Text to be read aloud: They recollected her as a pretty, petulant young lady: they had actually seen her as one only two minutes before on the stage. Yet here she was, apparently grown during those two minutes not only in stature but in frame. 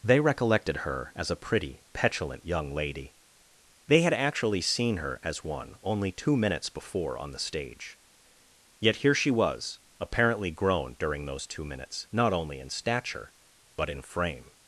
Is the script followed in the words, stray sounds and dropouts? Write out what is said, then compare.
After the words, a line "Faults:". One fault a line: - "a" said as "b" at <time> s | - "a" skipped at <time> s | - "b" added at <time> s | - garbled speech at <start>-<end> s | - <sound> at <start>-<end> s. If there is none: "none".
They recollected her as a pretty, petulant young lady: they had actually seen her as one only two minutes before on the stage. Yet here she was, apparently grown during those two minutes not only in stature but in frame.
Faults:
none